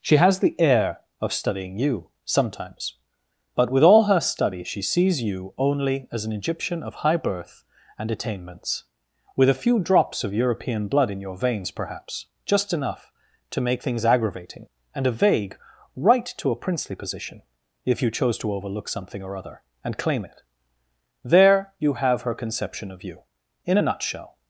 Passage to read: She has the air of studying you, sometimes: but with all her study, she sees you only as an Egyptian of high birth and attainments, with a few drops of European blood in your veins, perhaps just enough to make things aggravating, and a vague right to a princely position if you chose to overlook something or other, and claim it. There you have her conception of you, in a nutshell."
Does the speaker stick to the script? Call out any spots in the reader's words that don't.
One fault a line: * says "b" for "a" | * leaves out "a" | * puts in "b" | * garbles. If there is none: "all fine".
all fine